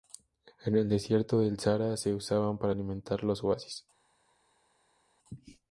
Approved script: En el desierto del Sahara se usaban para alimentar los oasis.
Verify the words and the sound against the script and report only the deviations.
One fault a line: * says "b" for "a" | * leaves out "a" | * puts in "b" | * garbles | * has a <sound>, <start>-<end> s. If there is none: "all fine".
all fine